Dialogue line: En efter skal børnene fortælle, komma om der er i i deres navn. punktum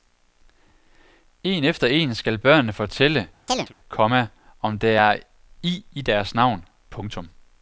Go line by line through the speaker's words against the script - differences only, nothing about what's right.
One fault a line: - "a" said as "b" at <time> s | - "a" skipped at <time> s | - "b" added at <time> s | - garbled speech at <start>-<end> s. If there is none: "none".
- "en" added at 1.9 s